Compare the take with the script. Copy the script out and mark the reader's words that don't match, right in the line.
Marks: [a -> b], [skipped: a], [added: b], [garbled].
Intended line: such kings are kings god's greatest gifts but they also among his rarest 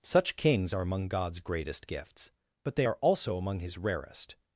such kings are [kings -> among] god's greatest gifts but they [added: are] also among his rarest